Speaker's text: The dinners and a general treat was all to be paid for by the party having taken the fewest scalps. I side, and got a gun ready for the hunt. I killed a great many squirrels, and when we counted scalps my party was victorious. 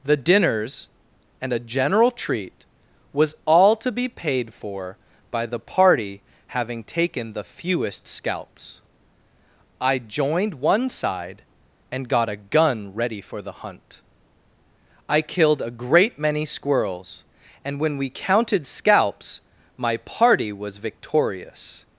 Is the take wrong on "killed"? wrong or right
right